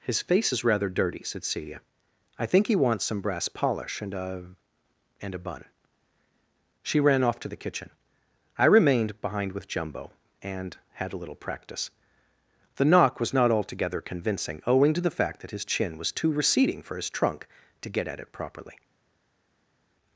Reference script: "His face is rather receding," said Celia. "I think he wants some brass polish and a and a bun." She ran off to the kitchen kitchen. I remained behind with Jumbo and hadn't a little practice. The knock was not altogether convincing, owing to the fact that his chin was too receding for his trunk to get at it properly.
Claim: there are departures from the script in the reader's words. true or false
true